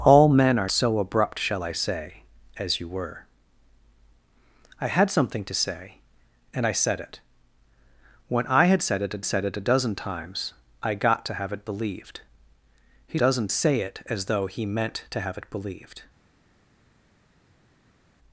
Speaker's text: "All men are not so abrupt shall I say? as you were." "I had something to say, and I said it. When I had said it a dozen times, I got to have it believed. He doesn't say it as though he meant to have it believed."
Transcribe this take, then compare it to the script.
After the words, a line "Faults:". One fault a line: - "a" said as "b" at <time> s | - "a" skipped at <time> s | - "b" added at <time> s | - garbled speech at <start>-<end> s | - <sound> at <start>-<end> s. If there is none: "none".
"All men are so abrupt shall I say? as you were." "I had something to say, and I said it. When I had said it a said it a dozen times, I got to have it believed. He dozen say it as though he meant to have it believed."
Faults:
- "not" skipped at 0.7 s
- "said it a" added at 9.3 s
- "doesn't" said as "dozen" at 13.2 s